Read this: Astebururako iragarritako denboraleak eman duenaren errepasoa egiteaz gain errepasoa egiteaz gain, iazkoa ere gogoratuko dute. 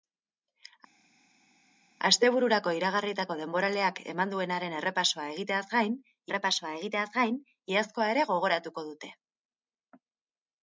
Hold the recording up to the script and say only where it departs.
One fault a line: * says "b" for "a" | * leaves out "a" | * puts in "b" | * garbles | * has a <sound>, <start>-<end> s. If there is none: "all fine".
all fine